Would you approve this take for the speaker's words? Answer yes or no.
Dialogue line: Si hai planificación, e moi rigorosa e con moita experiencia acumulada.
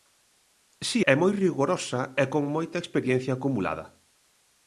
no